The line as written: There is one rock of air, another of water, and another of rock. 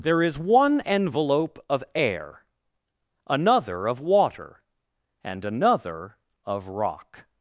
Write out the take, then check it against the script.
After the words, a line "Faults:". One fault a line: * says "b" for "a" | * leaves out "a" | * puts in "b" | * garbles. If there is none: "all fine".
There is one envelope of air, another of water, and another of rock.
Faults:
* says "envelope" for "rock"